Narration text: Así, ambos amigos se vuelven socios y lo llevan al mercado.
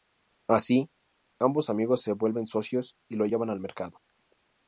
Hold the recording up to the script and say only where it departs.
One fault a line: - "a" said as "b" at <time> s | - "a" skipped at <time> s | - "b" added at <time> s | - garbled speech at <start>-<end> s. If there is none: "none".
none